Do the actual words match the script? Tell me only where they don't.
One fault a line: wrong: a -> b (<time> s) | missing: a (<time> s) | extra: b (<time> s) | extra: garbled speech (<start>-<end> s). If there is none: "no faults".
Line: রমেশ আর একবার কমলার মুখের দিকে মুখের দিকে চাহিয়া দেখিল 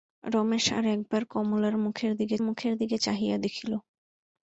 no faults